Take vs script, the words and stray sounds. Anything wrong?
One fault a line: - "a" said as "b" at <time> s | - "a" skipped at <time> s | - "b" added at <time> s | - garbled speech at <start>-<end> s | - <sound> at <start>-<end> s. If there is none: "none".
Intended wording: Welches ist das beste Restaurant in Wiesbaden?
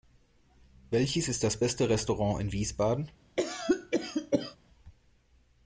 - cough at 3.4-4.6 s